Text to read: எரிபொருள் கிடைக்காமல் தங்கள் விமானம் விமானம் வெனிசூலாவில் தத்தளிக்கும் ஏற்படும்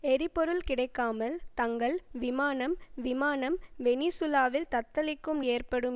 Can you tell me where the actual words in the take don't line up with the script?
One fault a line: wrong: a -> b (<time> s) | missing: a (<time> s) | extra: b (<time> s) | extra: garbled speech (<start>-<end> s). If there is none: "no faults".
no faults